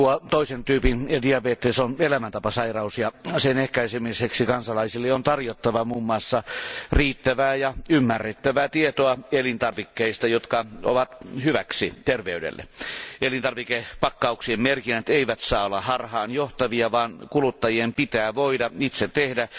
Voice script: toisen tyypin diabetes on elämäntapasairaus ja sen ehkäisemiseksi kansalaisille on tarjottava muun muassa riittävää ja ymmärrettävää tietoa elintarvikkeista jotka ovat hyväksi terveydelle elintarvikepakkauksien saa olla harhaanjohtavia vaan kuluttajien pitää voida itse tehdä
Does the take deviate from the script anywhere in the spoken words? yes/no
yes